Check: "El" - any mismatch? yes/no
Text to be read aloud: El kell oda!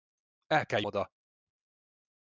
no